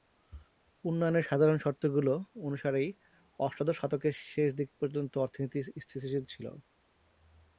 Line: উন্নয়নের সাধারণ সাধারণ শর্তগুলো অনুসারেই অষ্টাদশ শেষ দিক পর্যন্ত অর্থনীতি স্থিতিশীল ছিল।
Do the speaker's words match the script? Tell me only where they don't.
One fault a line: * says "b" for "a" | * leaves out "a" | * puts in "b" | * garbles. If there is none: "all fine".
* leaves out "সাধারণ"
* puts in "শতকের"